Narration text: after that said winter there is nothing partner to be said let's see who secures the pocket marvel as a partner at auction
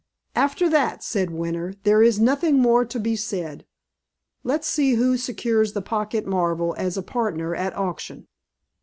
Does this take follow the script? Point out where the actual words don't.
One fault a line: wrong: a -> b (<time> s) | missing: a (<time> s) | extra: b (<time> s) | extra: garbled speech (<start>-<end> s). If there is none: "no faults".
wrong: partner -> more (2.6 s)